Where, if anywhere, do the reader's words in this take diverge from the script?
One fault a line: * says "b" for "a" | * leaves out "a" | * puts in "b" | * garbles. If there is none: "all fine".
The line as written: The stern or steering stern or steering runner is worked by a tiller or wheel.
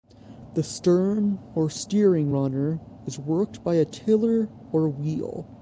* leaves out "stern or steering"